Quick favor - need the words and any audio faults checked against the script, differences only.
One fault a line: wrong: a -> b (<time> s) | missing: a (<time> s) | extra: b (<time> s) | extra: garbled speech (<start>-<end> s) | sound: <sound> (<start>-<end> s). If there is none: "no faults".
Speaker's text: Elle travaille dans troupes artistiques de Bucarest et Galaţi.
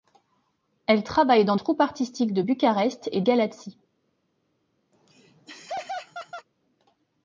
sound: laugh (4.9-6.5 s)